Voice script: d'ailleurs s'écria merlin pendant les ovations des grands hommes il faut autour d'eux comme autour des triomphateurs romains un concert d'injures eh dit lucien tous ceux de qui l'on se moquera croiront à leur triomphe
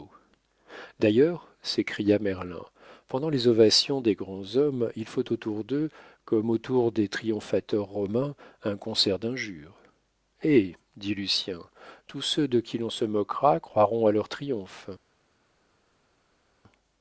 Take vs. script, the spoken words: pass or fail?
pass